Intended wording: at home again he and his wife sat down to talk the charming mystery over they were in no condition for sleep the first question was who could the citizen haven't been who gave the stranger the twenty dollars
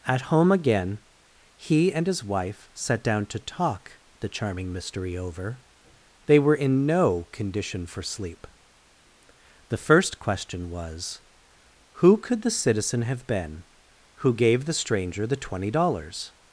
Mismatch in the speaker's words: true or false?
true